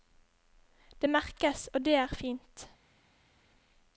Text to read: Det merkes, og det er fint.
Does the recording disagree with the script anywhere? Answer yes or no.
no